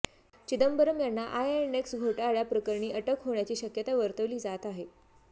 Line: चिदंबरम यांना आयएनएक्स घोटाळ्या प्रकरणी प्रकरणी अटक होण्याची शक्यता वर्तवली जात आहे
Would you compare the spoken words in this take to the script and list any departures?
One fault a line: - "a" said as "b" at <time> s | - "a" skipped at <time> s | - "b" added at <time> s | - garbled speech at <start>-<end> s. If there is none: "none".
- "प्रकरणी" skipped at 2.9 s